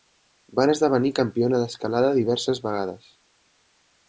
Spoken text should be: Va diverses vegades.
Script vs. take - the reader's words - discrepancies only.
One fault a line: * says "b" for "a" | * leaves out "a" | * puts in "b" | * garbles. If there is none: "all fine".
* puts in "esdevenir campiona d'escalada"